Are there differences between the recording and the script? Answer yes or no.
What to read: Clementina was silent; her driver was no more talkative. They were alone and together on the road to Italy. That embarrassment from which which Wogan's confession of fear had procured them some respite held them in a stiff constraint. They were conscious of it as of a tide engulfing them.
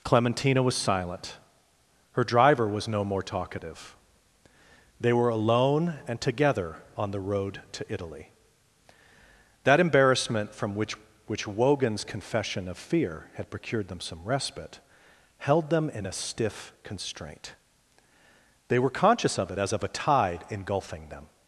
no